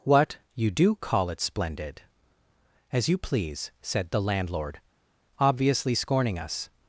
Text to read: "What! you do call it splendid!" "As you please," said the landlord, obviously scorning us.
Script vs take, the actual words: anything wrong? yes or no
no